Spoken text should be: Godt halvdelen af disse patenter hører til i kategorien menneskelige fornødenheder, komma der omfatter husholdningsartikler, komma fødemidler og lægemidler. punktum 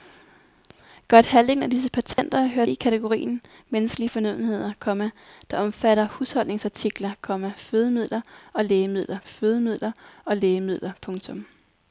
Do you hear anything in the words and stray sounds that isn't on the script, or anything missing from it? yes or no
yes